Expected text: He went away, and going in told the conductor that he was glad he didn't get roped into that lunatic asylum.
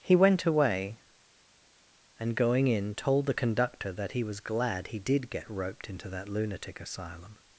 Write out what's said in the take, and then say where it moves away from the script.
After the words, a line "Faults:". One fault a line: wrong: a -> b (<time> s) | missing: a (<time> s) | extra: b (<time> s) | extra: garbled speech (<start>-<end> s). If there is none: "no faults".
He went away, and going in told the conductor that he was glad he did get roped into that lunatic asylum.
Faults:
wrong: didn't -> did (5.0 s)